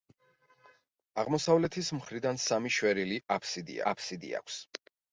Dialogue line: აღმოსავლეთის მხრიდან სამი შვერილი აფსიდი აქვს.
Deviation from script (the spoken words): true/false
true